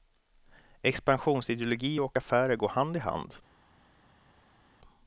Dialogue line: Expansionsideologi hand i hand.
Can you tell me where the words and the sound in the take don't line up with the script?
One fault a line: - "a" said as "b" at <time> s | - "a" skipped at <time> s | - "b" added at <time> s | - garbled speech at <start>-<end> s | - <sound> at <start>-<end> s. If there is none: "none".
- "och affärer går" added at 2.0 s